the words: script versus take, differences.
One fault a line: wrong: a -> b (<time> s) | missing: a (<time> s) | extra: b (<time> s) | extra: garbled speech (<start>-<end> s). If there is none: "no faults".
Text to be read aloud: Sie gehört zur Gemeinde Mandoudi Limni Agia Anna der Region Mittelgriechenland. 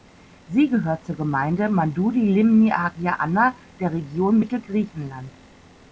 no faults